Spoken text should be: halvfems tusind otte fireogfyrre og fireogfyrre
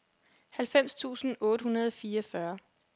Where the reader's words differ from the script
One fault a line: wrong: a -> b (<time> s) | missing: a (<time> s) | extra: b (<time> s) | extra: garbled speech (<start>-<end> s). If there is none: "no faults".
wrong: fireogfyrre -> hundrede (1.6 s)